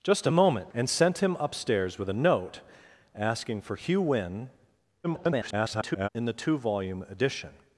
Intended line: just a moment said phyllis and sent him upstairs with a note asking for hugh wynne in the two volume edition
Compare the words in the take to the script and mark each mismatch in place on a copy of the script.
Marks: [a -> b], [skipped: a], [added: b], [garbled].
just a moment [skipped: said phyllis] and sent him upstairs with a note asking for hugh wynne [garbled] in the two volume edition